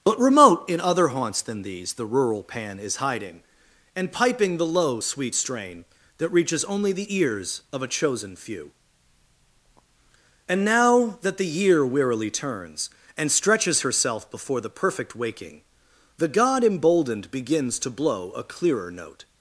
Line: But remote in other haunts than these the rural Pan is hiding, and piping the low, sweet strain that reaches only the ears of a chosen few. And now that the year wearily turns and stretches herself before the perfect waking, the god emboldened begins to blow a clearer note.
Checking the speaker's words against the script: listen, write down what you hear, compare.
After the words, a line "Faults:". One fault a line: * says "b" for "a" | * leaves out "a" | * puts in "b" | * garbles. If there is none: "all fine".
But remote in other haunts than these the rural Pan is hiding, and piping the low, sweet strain that reaches only the ears of a chosen few. And now that the year wearily turns and stretches herself before the perfect waking, the god emboldened begins to blow a clearer note.
Faults:
all fine